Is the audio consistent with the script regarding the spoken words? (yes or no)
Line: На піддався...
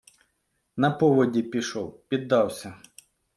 no